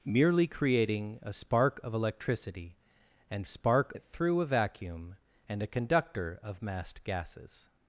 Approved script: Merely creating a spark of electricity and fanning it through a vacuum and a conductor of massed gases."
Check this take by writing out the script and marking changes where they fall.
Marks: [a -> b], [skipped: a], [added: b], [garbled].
Merely creating a spark of electricity and [fanning -> spark] it through a vacuum and a conductor of massed gases."